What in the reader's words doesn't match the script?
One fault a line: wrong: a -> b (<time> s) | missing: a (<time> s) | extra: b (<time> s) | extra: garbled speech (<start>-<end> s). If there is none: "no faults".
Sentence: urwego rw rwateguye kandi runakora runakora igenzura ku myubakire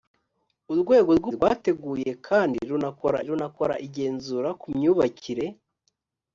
no faults